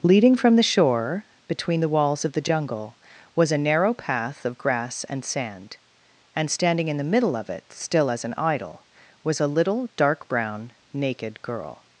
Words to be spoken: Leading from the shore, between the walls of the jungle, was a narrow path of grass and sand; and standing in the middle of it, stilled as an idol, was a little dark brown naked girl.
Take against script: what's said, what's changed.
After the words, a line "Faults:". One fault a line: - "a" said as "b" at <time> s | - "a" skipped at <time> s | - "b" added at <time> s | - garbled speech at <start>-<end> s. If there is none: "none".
Leading from the shore, between the walls of the jungle, was a narrow path of grass and sand; and standing in the middle of it, still as an idol, was a little dark brown naked girl.
Faults:
- "stilled" said as "still" at 7.7 s